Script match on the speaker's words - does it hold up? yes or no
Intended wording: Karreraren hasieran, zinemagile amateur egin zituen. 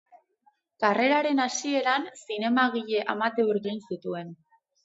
yes